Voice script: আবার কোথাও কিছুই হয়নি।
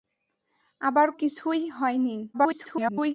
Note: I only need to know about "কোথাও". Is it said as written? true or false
false